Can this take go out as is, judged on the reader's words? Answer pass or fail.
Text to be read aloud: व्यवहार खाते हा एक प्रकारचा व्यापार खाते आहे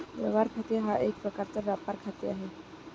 pass